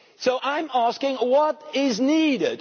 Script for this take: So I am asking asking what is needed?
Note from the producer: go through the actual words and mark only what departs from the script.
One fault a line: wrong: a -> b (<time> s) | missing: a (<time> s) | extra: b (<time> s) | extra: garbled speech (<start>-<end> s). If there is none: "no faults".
missing: asking (1.2 s)